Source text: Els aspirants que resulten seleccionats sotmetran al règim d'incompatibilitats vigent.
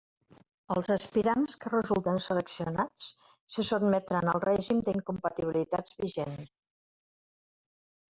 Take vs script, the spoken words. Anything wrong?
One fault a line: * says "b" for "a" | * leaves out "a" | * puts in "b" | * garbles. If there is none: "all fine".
* puts in "se"